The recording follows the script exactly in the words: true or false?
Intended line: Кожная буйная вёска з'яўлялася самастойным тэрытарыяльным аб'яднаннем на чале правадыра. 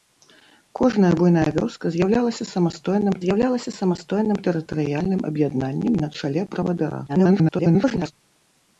false